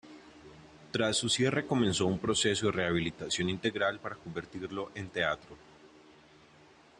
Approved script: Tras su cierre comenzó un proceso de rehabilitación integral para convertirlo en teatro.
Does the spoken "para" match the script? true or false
true